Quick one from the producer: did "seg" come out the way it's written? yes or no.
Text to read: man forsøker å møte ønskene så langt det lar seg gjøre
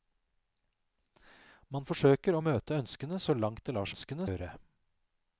no